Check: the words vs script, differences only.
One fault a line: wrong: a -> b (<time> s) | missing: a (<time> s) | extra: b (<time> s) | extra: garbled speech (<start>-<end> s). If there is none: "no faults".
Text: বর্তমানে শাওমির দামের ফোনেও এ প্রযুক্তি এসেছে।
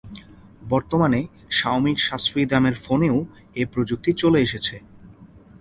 extra: সাশ্রয়ী (2.0 s)
extra: চলে (4.1 s)